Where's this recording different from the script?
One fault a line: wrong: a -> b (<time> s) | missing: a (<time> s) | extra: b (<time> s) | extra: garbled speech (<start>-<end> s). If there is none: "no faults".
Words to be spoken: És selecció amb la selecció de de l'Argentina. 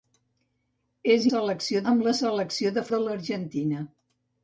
no faults